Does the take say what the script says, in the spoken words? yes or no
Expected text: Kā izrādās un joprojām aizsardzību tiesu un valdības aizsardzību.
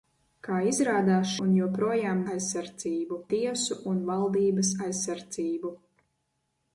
yes